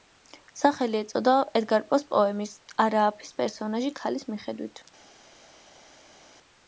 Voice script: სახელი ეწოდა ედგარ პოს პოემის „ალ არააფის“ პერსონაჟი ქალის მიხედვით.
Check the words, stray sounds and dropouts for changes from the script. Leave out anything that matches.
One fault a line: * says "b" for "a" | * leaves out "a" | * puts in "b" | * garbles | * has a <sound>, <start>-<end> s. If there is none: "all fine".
* leaves out "ალ"